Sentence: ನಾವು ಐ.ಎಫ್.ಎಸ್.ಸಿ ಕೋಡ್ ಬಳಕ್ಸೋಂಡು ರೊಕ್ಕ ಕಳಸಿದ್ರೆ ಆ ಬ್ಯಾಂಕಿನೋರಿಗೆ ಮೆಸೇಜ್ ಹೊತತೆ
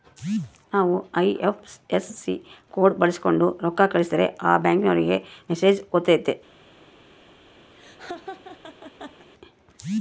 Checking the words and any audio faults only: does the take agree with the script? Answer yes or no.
no